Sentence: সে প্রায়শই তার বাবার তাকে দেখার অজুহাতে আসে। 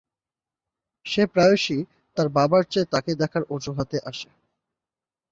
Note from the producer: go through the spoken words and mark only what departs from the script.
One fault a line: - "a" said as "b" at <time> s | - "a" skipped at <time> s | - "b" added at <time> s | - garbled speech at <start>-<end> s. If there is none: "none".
- "চেয়ে" added at 2.6 s